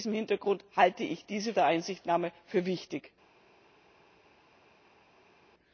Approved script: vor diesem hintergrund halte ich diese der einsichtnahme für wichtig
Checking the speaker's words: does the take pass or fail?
pass